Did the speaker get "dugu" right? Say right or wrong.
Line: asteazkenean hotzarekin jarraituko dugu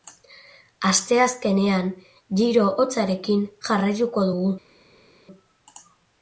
right